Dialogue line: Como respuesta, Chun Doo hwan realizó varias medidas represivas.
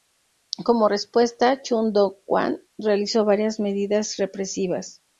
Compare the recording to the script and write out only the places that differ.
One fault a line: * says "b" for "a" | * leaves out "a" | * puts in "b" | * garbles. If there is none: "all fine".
all fine